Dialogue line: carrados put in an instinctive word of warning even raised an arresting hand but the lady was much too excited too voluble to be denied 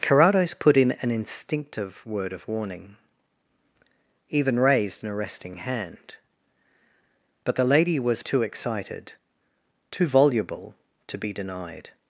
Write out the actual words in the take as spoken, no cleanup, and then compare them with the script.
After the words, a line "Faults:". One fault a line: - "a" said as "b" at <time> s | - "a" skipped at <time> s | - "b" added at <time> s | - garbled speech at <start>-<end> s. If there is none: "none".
carrados put in an instinctive word of warning even raised an arresting hand but the lady was too excited too voluble to be denied
Faults:
- "much" skipped at 8.2 s